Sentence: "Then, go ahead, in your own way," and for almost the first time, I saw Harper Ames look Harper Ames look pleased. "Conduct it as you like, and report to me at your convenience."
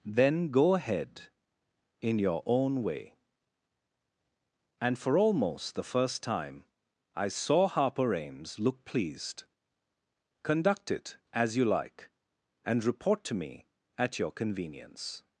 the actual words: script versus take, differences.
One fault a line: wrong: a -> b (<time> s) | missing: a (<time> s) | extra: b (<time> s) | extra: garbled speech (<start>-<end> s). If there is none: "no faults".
missing: Harper Ames look (8.8 s)